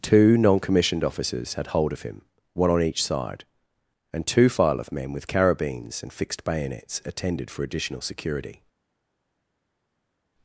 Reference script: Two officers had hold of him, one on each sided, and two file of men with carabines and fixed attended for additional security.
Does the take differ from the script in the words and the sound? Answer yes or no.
yes